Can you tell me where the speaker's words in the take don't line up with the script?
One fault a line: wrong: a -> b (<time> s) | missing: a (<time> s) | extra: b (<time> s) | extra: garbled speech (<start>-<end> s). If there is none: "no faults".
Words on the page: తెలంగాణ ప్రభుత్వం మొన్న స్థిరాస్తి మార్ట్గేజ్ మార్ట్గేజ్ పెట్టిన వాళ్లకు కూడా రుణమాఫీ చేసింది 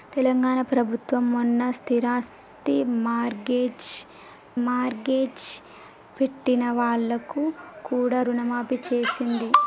no faults